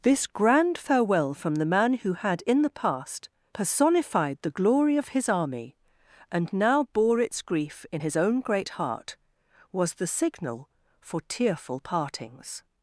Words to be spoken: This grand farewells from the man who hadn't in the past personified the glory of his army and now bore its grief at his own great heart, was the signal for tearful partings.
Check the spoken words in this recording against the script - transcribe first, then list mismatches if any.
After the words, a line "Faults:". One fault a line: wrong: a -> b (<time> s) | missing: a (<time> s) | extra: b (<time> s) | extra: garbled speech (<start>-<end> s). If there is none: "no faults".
This grand farewell from the man who had in the past personified the glory of his army and now bore its grief in his own great heart, was the signal for tearful partings.
Faults:
wrong: farewells -> farewell (0.8 s)
wrong: hadn't -> had (2.1 s)
wrong: at -> in (7.9 s)